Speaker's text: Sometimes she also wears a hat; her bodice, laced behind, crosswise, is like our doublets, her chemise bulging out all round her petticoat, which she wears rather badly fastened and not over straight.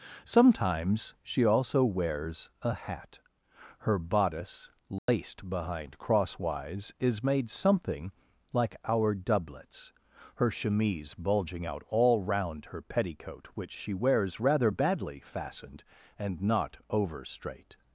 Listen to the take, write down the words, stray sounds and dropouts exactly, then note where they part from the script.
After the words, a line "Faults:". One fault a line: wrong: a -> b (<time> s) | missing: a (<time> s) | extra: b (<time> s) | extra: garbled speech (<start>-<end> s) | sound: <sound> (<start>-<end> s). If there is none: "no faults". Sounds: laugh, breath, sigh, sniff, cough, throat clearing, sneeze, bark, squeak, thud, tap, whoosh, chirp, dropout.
Sometimes she also wears a hat; her bodice, laced behind, crosswise, is made something like our doublets, her chemise bulging out all round her petticoat, which she wears rather badly fastened and not over straight.
Faults:
sound: dropout (5.0-5.1 s)
extra: made something (7.2 s)